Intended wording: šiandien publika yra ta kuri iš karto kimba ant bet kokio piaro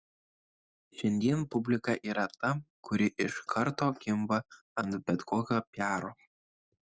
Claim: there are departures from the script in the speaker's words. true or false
false